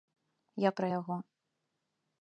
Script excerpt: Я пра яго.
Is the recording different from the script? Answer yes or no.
no